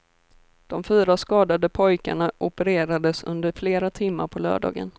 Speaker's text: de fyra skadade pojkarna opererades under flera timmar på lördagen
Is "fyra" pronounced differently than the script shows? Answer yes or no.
no